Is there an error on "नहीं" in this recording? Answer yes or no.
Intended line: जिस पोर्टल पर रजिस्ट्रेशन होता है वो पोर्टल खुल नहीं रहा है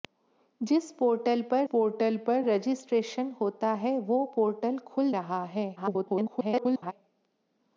yes